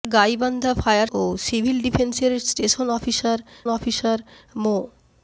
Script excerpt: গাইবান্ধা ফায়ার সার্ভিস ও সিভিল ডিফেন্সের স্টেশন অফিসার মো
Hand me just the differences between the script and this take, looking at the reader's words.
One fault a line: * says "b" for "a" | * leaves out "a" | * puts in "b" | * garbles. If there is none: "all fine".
* leaves out "সার্ভিস"
* puts in "অফিসার"